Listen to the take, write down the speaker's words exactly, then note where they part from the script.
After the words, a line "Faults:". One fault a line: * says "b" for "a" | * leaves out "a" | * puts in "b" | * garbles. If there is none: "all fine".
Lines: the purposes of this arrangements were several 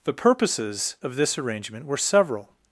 the purposes of this arrangement were several
Faults:
* says "arrangement" for "arrangements"